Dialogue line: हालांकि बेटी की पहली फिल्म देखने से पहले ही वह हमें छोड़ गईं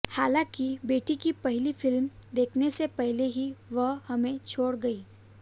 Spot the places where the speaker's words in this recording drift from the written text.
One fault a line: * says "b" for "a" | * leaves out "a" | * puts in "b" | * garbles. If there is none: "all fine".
all fine